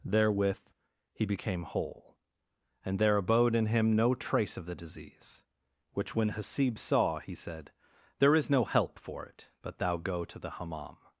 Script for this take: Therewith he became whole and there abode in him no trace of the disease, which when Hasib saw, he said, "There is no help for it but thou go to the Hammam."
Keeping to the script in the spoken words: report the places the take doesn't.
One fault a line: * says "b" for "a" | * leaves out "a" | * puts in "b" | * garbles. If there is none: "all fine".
all fine